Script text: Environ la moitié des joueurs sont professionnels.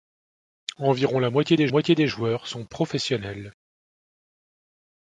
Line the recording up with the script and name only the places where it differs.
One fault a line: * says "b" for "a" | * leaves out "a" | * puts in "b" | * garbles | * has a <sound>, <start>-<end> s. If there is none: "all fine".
* puts in "moitié des"